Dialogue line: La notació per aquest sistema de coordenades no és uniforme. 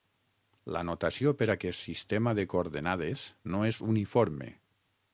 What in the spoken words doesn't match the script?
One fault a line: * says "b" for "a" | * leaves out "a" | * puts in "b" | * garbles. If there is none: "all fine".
all fine